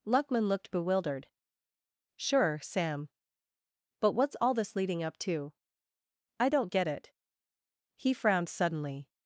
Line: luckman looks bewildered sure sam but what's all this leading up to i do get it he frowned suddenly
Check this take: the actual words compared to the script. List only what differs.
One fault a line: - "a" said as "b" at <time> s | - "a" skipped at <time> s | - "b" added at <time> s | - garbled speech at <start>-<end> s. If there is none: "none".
- "looks" said as "looked" at 0.5 s
- "do" said as "don't" at 6.5 s